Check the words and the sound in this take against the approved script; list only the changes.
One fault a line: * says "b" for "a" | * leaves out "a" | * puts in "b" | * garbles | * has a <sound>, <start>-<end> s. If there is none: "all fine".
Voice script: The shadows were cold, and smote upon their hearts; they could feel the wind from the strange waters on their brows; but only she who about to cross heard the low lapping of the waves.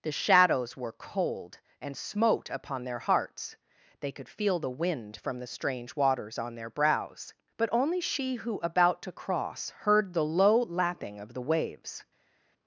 all fine